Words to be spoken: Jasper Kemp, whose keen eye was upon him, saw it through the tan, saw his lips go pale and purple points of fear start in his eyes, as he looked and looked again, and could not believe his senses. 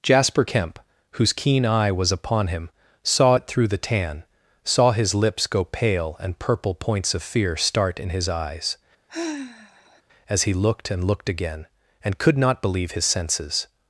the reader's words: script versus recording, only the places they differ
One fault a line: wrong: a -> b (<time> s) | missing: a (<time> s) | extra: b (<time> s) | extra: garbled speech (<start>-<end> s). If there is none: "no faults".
no faults